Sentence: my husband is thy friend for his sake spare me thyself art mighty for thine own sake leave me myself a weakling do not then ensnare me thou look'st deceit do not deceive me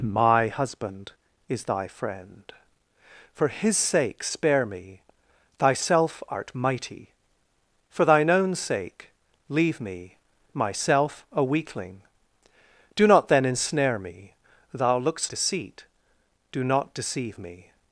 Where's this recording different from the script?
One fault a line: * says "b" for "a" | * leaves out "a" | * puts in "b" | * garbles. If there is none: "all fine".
all fine